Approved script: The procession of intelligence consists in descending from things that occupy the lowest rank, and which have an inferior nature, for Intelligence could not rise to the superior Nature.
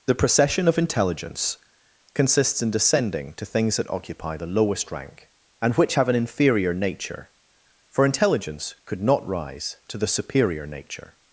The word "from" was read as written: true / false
false